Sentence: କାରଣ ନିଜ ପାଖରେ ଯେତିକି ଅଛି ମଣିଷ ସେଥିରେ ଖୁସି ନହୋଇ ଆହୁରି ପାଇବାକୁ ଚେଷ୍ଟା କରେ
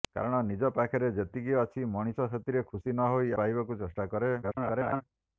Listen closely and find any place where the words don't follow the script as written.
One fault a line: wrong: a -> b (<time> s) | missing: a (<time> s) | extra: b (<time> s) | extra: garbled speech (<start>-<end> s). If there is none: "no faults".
missing: ଆହୁରି (3.3 s)
extra: garbled speech (4.4-5.0 s)